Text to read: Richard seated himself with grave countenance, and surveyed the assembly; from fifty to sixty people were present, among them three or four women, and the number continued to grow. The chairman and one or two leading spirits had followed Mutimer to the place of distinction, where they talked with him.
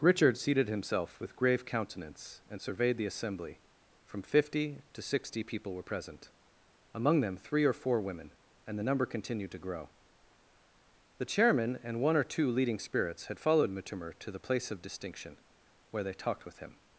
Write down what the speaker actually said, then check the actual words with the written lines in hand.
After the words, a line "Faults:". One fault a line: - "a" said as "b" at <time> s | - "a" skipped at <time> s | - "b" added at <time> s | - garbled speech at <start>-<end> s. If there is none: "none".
Richard seated himself with grave countenance, and surveyed the assembly; from fifty to sixty people were present, among them three or four women, and the number continued to grow. The chairman and one or two leading spirits had followed Mutimer to the place of distinction, where they talked with him.
Faults:
none